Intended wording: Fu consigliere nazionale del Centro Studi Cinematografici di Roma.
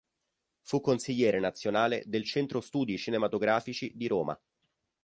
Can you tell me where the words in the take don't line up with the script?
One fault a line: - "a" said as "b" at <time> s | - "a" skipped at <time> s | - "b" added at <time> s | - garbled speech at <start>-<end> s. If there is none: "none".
none